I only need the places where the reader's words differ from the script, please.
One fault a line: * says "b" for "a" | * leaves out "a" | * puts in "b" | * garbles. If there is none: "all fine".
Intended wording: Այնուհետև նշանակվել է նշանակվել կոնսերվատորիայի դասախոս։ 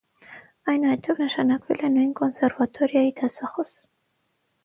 * says "նույն" for "նշանակվել"